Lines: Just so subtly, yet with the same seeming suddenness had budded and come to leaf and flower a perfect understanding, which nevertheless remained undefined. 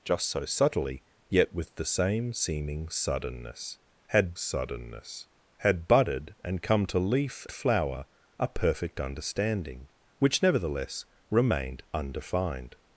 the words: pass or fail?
fail